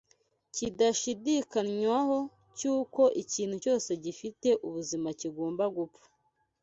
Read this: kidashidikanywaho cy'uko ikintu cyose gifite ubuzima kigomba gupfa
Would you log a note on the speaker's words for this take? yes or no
no